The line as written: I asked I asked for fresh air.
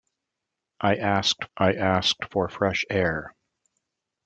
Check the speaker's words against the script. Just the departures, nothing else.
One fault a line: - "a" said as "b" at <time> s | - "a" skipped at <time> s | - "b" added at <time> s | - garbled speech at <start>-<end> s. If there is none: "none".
none